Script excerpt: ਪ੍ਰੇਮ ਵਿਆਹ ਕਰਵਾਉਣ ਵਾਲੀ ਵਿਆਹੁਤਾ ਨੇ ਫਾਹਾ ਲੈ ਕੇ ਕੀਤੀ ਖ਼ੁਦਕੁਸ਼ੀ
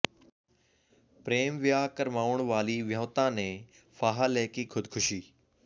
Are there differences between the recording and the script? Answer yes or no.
yes